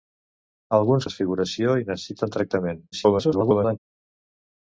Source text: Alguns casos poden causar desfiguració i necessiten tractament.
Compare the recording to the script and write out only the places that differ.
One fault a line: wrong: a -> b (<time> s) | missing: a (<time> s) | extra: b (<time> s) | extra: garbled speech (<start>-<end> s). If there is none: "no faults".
missing: casos poden causar (1.1 s)
extra: garbled speech (2.9-3.8 s)